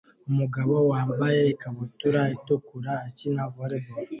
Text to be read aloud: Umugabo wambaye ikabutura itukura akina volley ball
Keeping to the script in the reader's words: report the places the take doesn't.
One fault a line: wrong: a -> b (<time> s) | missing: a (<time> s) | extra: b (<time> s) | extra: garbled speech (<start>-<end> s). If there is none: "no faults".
no faults